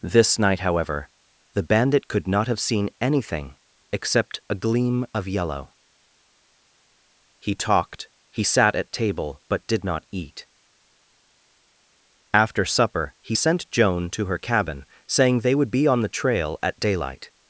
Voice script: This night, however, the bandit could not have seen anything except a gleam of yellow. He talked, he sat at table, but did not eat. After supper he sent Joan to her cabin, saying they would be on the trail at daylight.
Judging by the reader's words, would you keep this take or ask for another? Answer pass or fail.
pass